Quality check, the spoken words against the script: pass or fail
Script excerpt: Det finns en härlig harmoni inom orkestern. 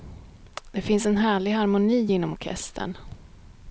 pass